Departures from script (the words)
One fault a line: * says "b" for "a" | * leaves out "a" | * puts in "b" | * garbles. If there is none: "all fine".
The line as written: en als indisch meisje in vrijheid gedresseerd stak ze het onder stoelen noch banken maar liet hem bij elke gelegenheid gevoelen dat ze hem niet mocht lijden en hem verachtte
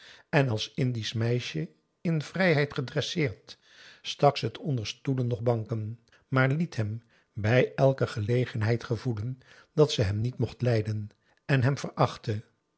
all fine